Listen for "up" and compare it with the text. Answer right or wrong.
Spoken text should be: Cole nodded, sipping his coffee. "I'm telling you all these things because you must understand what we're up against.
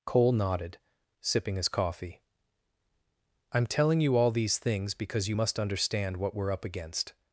right